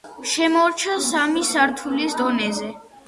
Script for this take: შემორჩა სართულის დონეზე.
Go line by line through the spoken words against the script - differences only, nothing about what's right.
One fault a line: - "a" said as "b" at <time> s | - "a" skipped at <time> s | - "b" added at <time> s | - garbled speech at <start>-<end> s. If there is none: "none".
- "სამი" added at 1.1 s